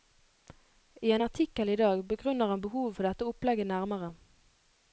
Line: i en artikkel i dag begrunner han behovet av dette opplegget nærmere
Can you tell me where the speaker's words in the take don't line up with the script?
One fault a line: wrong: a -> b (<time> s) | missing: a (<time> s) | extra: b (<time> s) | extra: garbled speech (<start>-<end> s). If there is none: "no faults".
wrong: av -> for (3.0 s)